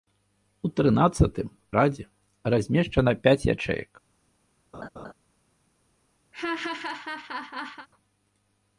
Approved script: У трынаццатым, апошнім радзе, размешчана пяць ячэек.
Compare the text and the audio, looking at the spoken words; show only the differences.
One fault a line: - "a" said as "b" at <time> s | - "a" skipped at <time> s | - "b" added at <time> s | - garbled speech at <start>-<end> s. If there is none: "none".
- "апошнім" skipped at 1.5 s